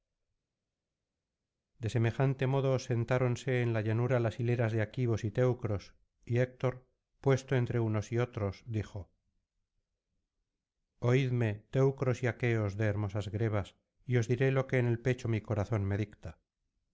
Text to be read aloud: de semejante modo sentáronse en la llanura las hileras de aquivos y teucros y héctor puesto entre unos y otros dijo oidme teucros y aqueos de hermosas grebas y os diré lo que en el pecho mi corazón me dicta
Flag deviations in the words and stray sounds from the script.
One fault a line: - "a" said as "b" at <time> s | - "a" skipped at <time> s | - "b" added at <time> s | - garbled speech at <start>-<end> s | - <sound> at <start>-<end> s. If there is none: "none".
none